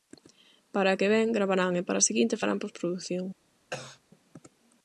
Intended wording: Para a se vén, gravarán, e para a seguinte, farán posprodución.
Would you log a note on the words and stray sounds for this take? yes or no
yes